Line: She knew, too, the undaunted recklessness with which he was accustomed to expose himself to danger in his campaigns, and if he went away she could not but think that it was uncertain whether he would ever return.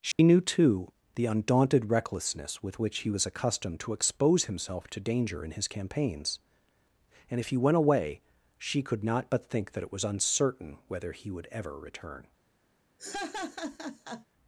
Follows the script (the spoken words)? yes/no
yes